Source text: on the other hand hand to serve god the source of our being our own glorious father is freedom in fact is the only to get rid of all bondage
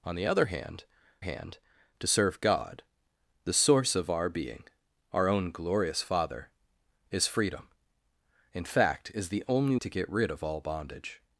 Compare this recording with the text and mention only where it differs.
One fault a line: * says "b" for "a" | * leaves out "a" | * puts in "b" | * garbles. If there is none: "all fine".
all fine